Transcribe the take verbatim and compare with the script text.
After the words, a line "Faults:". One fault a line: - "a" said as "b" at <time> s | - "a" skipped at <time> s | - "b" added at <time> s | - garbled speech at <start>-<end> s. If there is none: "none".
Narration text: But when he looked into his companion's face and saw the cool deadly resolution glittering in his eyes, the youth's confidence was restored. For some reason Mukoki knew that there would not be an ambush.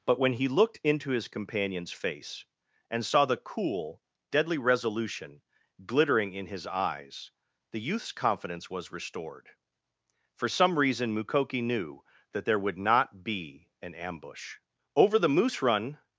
But when he looked into his companion's face and saw the cool deadly resolution glittering in his eyes, the youth's confidence was restored. For some reason Mukoki knew that there would not be an ambush. Over the moose run
Faults:
- "Over the moose run" added at 14.9 s